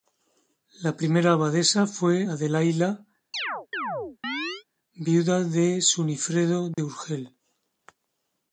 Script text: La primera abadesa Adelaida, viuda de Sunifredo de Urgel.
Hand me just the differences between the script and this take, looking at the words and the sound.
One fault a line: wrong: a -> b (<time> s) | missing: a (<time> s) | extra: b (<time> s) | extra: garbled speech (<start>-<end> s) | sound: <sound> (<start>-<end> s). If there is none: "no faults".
extra: fue (1.9 s)
sound: chirp (3.3-4.6 s)
sound: dropout (6.7-6.8 s)